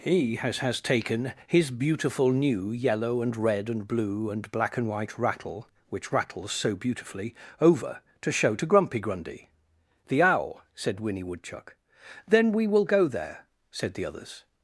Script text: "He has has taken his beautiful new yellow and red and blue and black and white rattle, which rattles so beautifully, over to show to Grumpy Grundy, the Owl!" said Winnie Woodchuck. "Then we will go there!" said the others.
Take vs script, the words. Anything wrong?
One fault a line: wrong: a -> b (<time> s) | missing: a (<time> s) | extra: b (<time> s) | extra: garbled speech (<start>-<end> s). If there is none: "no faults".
no faults